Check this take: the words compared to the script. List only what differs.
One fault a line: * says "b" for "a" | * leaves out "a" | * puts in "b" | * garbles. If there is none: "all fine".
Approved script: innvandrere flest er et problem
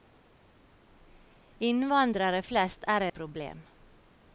all fine